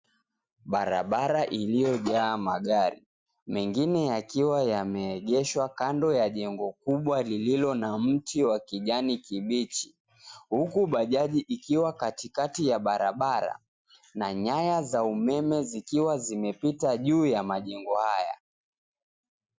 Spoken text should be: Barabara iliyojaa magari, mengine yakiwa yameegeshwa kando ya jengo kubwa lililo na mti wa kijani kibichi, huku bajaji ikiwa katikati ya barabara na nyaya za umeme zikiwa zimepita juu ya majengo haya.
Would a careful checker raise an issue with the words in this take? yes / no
no